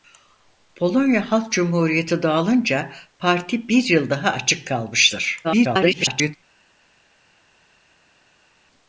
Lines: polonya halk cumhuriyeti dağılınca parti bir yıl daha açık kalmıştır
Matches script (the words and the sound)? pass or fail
fail